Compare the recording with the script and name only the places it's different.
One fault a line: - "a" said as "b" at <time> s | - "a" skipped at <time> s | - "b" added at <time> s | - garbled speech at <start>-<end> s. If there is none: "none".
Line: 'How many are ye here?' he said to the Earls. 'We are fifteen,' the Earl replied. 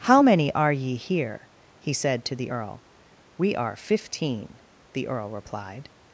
- "Earls" said as "Earl" at 2.5 s